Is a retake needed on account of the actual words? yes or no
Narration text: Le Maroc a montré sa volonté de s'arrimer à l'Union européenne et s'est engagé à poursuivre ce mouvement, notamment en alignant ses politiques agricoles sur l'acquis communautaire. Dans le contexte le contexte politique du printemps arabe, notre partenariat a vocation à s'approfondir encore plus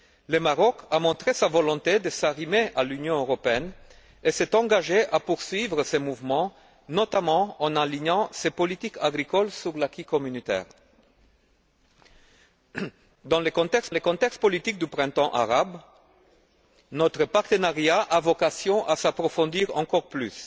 no